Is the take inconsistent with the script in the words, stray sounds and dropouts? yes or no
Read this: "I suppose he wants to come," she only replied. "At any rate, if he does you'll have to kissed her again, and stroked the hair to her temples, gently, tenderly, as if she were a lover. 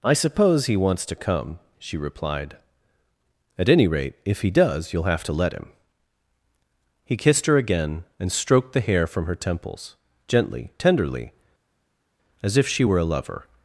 yes